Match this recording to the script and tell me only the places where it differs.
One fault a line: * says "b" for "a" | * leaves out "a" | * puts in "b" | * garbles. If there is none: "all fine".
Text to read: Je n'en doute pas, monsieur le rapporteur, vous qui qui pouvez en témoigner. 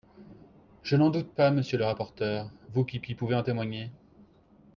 all fine